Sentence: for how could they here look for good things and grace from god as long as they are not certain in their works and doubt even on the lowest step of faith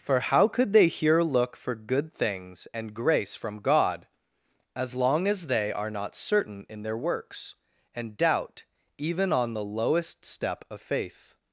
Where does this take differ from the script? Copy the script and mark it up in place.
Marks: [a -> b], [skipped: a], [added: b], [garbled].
for how could they here look for good things and grace from god as long as they are not certain in their works and doubt even on the lowest step of faith